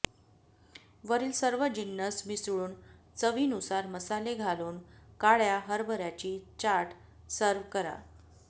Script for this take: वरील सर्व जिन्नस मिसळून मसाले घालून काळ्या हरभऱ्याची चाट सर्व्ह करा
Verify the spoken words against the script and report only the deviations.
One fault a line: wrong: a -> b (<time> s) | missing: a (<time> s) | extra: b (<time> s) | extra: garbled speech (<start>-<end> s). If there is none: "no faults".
extra: चवीनुसार (3.2 s)